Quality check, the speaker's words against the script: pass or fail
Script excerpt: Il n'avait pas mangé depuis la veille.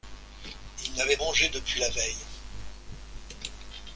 fail